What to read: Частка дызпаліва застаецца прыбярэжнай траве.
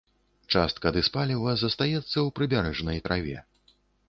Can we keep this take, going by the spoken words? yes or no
no